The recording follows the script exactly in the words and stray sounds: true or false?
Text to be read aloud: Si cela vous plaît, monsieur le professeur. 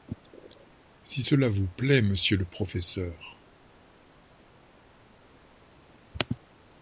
true